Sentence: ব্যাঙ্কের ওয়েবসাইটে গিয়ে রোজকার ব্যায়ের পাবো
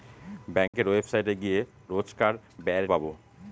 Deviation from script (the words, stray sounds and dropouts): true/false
true